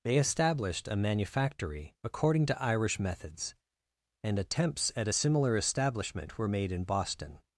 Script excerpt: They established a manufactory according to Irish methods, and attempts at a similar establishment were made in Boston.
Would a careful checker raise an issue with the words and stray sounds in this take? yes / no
no